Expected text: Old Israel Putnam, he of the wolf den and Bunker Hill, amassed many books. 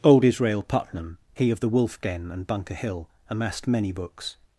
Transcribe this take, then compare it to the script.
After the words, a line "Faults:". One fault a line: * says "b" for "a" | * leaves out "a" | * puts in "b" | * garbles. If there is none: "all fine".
Old Israel Putnam, he of the wolf den and Bunker Hill, amassed many books.
Faults:
all fine